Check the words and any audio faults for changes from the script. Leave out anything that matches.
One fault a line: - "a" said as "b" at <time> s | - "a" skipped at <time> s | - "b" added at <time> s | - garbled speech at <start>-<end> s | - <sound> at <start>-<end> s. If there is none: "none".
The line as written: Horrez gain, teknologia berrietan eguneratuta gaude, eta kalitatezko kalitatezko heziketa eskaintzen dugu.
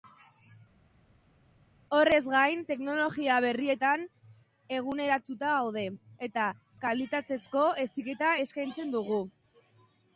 - "kalitatezko" skipped at 7.6 s